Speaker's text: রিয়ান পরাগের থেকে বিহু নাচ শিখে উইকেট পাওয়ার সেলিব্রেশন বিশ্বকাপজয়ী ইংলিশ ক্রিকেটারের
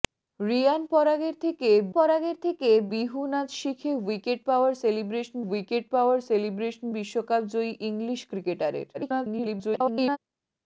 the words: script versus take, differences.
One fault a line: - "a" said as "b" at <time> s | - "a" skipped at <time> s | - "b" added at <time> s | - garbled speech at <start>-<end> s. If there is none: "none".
- "পরাগের থেকে" added at 1.9 s
- "উইকেট পাওয়ার সেলিব্রেশন" added at 5.4 s
- garbled speech at 8.9-10.2 s